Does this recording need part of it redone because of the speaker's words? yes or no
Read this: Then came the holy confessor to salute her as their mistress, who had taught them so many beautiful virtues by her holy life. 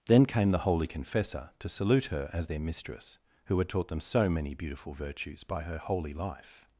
no